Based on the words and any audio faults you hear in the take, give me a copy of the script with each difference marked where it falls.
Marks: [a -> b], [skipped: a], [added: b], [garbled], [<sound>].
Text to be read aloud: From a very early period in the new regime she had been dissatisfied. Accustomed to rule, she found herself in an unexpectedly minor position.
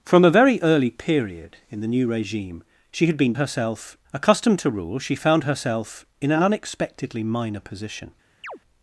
From a very early period in the new regime she had been [dissatisfied. -> herself] Accustomed to rule, she found herself in an unexpectedly minor position. [chirp]